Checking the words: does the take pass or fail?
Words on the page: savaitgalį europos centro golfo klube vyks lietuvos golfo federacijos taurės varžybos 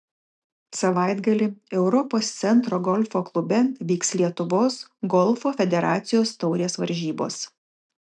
pass